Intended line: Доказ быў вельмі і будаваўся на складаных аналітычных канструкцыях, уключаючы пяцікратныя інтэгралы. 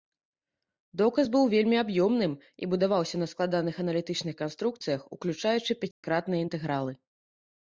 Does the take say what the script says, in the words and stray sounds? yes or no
no